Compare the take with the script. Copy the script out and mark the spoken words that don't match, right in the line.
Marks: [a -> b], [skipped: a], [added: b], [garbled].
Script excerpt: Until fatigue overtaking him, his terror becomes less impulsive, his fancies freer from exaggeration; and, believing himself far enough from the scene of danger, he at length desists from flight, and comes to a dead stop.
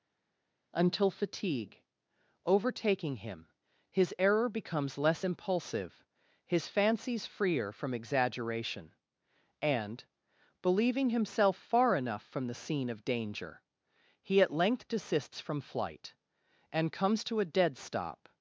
Until fatigue overtaking him, his [terror -> error] becomes less impulsive, his fancies freer from exaggeration; and, believing himself far enough from the scene of danger, he at length desists from flight, and comes to a dead stop.